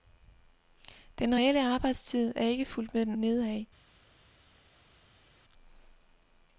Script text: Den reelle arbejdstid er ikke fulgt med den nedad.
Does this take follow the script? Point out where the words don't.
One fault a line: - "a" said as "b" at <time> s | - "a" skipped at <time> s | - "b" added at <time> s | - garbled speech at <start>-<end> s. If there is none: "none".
none